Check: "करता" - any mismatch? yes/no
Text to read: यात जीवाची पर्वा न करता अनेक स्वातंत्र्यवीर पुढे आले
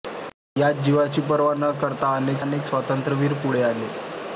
no